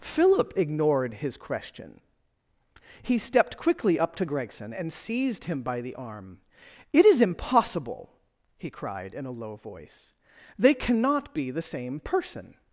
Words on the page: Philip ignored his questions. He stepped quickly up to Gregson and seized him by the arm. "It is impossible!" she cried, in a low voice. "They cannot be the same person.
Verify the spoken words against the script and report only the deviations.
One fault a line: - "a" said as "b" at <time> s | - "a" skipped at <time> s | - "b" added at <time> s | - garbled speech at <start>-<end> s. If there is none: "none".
- "questions" said as "question" at 1.4 s
- "she" said as "he" at 8.6 s